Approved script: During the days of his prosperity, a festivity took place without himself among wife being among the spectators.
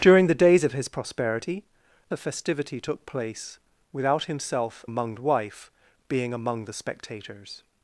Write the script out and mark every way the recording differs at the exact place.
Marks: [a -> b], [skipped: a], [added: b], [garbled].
During the days of his prosperity, a festivity took place without himself among wife being among the spectators.